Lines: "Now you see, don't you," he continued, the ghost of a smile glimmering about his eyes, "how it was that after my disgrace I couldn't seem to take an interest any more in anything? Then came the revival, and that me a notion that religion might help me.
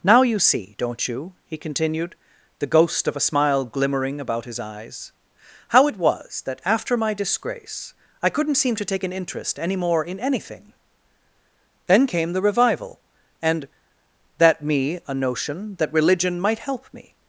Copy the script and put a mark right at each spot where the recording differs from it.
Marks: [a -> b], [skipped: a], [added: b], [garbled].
"Now you see, don't you," he continued, the ghost of a smile glimmering about his eyes, "how it was that after my disgrace I couldn't seem to take an interest any more in anything? Then came the revival, and that me a notion that religion might help me.